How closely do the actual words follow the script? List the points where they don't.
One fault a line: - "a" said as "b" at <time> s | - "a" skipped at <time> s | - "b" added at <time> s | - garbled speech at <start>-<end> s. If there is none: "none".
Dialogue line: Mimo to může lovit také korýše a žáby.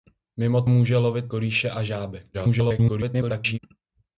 - "to" skipped at 0.6 s
- "také" skipped at 1.3 s
- garbled speech at 2.3-3.6 s